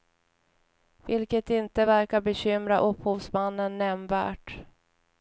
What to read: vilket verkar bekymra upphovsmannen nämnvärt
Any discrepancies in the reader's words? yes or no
yes